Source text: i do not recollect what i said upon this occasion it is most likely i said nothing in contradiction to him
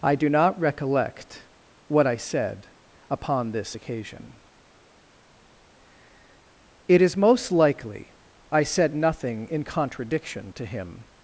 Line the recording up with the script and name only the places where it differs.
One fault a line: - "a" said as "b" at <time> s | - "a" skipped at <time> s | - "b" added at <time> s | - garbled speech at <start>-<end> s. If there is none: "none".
none